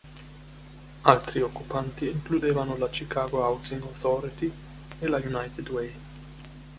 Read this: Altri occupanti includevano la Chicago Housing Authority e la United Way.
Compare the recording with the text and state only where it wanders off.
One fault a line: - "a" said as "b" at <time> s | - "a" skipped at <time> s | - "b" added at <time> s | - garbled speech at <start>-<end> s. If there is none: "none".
none